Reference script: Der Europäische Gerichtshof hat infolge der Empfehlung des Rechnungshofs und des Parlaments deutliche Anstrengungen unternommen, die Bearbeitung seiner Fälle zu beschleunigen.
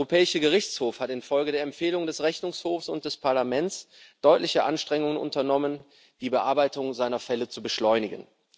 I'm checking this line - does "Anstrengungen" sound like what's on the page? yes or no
yes